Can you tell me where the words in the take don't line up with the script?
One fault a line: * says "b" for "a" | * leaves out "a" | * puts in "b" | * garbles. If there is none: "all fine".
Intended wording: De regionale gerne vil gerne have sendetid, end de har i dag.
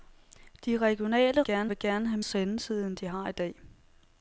all fine